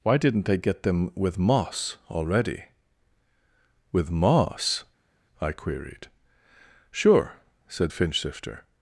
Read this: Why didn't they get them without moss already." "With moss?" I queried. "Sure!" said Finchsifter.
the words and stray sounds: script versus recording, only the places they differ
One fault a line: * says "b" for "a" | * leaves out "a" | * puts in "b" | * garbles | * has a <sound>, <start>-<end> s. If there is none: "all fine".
* says "with" for "without"